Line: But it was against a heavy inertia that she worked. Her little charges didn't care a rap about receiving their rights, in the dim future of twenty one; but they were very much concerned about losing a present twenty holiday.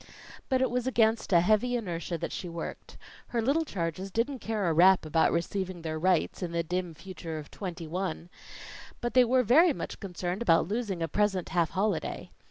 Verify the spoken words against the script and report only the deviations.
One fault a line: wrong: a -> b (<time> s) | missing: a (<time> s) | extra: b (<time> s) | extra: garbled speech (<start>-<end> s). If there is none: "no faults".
wrong: twenty -> half (11.5 s)